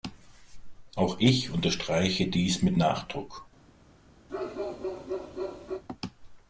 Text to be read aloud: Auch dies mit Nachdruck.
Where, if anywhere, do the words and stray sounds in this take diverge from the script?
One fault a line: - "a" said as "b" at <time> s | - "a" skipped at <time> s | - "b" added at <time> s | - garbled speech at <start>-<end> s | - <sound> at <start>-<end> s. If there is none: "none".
- "ich unterstreiche" added at 1.2 s
- bark at 4.3-5.8 s